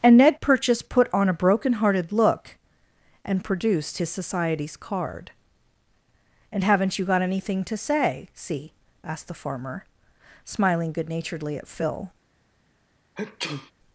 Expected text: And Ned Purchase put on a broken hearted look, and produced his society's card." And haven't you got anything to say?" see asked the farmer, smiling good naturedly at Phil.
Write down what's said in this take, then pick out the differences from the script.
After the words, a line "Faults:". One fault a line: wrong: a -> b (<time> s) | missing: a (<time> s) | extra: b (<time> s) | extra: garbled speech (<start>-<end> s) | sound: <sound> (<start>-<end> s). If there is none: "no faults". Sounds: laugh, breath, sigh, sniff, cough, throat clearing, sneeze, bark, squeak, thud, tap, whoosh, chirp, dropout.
And Ned Purchase put on a broken hearted look, and produced his society's card." And haven't you got anything to say?" see asked the farmer, smiling good naturedly at Phil.
Faults:
sound: sneeze (13.2-13.7 s)